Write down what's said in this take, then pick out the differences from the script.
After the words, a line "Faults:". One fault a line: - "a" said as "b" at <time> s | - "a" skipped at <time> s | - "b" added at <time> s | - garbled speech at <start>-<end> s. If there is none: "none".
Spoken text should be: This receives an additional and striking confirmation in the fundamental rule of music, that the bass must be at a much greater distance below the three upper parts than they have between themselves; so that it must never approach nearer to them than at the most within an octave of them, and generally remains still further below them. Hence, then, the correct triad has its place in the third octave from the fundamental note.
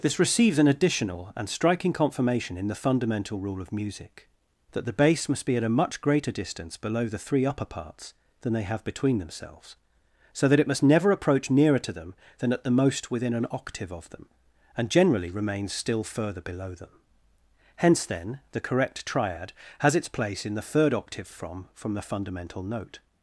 This receives an additional and striking confirmation in the fundamental rule of music, that the bass must be at a much greater distance below the three upper parts than they have between themselves; so that it must never approach nearer to them than at the most within an octave of them, and generally remains still further below them. Hence, then, the correct triad has its place in the third octave from from the fundamental note.
Faults:
- "from" added at 21.7 s